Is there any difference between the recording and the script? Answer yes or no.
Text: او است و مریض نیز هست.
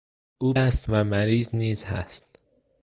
no